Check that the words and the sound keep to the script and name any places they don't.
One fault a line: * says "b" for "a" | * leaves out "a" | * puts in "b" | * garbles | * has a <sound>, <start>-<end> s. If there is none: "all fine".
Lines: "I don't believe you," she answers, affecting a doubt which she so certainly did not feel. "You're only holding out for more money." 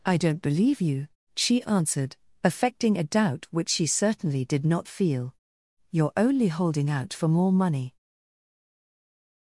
* says "answered" for "answers"
* leaves out "so"